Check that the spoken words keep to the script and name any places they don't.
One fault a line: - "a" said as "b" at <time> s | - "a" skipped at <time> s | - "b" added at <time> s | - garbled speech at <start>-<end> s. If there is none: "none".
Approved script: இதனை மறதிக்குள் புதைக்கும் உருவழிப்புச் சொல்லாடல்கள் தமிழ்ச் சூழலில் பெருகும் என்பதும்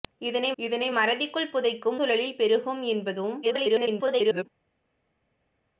- "இதனை" added at 0.6 s
- "உருவழிப்புச் சொல்லாடல்கள் தமிழ்ச்" skipped at 2.0 s
- garbled speech at 3.4-4.5 s